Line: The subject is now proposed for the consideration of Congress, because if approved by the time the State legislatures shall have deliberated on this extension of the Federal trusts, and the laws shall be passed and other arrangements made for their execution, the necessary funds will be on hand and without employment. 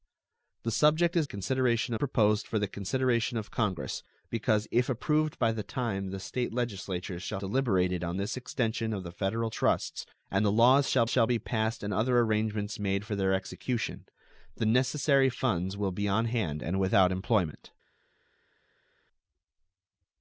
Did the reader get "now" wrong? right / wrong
wrong